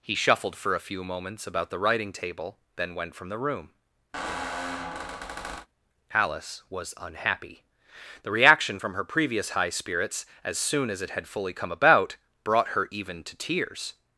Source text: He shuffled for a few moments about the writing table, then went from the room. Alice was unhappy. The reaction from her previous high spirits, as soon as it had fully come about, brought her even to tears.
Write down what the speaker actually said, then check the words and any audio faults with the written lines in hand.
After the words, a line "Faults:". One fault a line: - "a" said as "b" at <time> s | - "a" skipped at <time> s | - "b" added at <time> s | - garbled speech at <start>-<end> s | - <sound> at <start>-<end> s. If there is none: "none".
He shuffled for a few moments about the writing table, then went from the room. Alice was unhappy. The reaction from her previous high spirits, as soon as it had fully come about, brought her even to tears.
Faults:
- squeak at 4.1-5.7 s